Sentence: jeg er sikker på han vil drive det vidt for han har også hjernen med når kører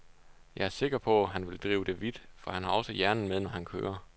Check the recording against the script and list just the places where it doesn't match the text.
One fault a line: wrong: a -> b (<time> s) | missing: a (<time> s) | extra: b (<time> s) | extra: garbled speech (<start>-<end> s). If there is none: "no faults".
extra: han (3.5 s)